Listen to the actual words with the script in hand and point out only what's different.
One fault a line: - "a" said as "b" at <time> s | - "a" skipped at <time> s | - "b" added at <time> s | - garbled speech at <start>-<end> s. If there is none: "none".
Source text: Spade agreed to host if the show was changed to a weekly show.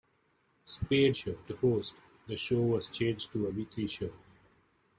- "agreed" said as "show" at 1.1 s
- "if" skipped at 2.0 s